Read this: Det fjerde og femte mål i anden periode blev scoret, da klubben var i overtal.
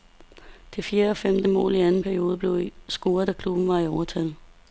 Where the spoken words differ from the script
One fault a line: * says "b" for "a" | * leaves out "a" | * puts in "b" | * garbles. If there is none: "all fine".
all fine